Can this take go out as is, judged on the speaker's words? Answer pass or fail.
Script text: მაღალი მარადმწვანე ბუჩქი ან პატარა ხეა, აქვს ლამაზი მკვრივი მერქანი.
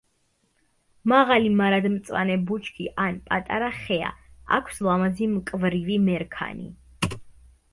pass